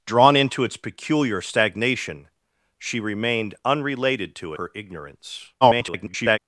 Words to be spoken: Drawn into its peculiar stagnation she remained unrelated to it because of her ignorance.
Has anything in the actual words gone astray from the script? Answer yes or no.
yes